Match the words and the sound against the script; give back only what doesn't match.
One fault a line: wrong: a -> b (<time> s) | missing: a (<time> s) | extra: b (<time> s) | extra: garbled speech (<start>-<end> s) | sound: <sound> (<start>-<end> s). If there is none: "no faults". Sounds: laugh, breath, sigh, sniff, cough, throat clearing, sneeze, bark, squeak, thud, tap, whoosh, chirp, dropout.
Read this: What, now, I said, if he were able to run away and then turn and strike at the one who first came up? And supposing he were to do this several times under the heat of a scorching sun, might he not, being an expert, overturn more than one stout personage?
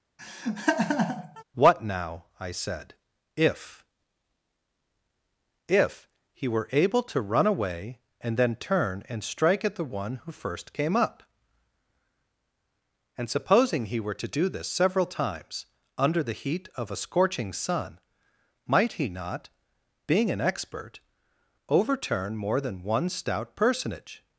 sound: laugh (0.2-1.4 s)
extra: if (5.7 s)